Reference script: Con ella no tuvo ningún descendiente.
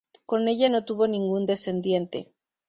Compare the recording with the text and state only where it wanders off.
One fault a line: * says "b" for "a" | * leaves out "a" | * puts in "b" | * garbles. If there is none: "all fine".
all fine